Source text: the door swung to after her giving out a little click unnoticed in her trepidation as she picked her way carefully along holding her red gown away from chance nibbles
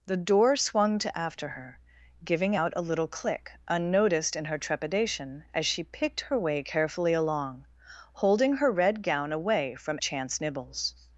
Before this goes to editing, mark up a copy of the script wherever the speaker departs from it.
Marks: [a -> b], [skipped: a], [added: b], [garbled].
the door swung to after her giving out a little click unnoticed in her trepidation as she picked her way carefully along holding her red gown away from chance nibbles